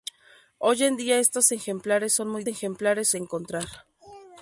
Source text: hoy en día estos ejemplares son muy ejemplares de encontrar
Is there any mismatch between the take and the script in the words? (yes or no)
no